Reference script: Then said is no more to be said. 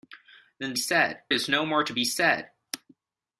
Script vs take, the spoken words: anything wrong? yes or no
no